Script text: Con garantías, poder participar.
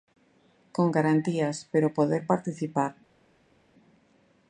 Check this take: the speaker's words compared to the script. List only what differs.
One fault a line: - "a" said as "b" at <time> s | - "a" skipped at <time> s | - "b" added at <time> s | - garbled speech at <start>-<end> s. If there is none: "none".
- "pero" added at 1.7 s